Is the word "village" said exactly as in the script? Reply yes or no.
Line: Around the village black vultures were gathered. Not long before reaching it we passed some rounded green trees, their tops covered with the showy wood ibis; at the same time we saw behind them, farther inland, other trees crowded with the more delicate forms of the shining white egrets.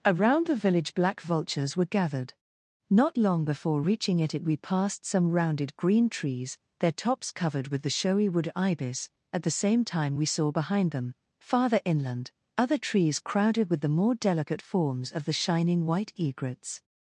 yes